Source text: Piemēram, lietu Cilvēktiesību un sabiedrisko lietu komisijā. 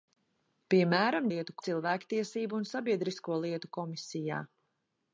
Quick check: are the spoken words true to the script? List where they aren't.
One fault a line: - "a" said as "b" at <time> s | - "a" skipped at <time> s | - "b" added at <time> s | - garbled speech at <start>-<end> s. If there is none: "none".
none